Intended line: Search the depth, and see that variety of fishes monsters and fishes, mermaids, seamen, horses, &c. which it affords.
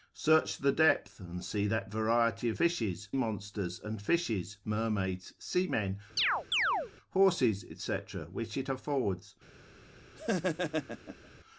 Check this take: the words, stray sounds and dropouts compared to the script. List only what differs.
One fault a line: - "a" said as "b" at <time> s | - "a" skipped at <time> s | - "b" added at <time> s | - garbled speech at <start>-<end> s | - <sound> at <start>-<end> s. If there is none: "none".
- chirp at 6.2-6.9 s
- laugh at 10.2-11.3 s